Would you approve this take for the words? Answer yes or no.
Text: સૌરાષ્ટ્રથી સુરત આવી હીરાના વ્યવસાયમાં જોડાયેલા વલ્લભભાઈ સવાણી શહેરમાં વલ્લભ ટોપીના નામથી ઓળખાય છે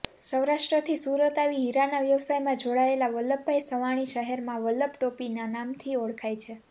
yes